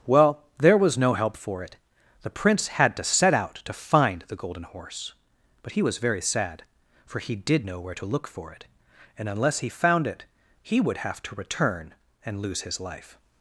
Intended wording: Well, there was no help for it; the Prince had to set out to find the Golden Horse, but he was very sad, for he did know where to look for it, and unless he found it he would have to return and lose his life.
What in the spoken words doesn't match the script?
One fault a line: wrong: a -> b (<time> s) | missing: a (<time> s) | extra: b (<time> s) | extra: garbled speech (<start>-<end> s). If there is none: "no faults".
no faults